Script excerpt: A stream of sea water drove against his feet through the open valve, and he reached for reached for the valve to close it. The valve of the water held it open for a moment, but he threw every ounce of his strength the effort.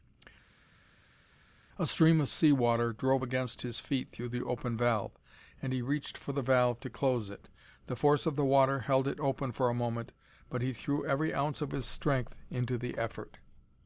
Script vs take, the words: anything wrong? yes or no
yes